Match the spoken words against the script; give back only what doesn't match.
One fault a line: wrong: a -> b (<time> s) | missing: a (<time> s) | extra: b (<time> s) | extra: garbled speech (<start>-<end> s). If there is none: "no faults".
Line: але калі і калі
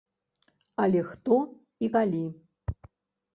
wrong: калі -> хто (1.1 s)